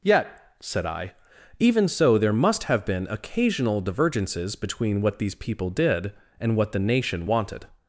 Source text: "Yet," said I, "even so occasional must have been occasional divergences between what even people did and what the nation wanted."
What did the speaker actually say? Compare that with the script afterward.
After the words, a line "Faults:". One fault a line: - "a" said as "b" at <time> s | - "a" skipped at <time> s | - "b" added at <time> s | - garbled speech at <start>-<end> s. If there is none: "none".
"Yet," said I, "even so there must have been occasional divergences between what these people did and what the nation wanted."
Faults:
- "occasional" said as "there" at 2.2 s
- "even" said as "these" at 5.2 s